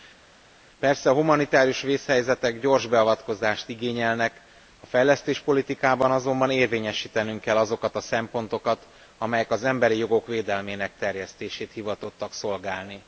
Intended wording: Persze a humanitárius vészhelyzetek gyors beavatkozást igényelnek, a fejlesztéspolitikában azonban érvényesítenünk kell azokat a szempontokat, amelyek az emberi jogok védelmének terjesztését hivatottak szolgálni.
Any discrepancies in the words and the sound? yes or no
no